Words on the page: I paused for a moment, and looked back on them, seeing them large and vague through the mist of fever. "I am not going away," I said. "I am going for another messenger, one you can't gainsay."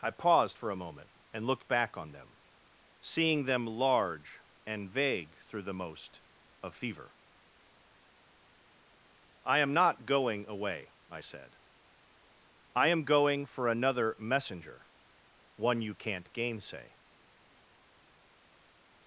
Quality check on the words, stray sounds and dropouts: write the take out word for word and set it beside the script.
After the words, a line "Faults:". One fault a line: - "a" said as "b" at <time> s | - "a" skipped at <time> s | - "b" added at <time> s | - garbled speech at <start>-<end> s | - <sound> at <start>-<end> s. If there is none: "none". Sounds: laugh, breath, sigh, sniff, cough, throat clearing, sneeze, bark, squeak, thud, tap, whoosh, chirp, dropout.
I paused for a moment, and looked back on them, seeing them large and vague through the most of fever. "I am not going away," I said. "I am going for another messenger, one you can't gainsay."
Faults:
- "mist" said as "most" at 5.8 s